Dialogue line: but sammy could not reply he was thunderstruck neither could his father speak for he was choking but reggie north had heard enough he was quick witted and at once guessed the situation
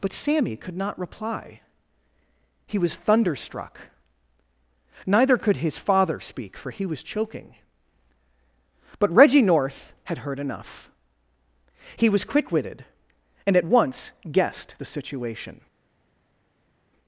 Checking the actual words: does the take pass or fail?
pass